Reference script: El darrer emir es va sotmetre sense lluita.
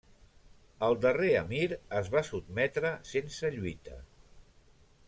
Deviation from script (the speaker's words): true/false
false